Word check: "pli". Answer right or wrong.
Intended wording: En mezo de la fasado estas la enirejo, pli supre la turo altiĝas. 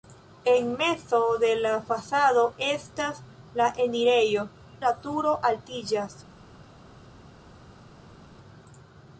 wrong